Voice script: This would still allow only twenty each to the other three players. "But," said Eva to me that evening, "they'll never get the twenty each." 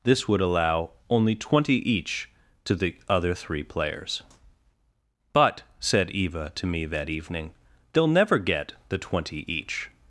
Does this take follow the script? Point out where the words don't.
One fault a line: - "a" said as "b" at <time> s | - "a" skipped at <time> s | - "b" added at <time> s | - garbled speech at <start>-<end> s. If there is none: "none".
- "still" skipped at 0.4 s